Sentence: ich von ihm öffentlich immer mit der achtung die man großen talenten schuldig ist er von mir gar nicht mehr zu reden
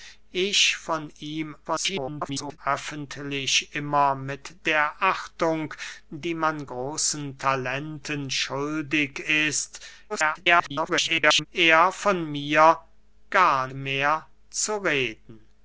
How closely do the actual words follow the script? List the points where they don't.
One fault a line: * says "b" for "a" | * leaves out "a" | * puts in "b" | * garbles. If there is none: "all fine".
* garbles
* garbles
* leaves out "nicht"